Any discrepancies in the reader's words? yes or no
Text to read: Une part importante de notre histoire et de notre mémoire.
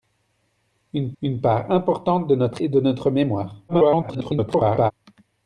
yes